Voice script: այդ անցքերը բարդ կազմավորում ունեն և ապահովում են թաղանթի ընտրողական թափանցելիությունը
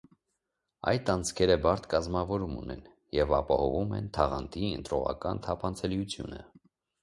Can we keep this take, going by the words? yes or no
yes